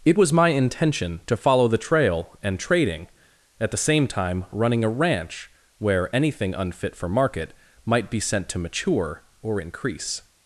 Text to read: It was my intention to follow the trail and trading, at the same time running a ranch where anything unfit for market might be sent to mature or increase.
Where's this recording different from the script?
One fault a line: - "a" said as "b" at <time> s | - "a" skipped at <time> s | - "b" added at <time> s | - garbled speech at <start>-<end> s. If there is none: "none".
none